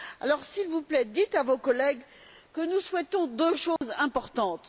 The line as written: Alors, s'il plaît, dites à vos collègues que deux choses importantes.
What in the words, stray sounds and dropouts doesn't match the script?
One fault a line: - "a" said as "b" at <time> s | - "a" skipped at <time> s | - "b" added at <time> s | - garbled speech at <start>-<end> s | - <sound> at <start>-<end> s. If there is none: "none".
- "vous" added at 0.7 s
- "nous souhaitons" added at 2.6 s
- dropout at 3.8-3.8 s